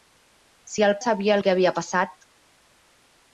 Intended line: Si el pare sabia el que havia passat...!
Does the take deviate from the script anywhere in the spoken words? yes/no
yes